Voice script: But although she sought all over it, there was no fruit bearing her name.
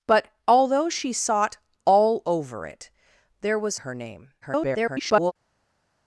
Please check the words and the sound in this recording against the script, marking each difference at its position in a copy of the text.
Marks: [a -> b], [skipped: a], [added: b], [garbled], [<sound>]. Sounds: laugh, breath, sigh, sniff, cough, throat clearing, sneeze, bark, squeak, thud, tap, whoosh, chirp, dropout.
But although she sought all over it, there was [skipped: no fruit bearing] her name. [garbled]